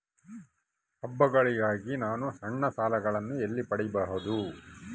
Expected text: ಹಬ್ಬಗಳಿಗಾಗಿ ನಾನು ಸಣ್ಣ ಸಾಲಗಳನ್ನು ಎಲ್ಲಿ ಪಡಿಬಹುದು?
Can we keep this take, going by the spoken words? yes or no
yes